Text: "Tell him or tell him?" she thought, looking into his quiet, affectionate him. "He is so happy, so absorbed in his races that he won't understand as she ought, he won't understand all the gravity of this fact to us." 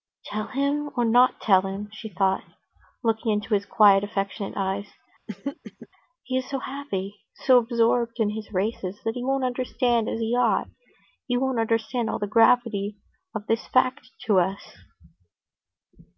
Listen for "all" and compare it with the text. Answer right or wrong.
right